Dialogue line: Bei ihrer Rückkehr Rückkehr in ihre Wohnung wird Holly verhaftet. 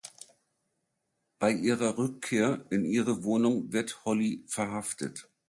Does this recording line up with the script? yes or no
no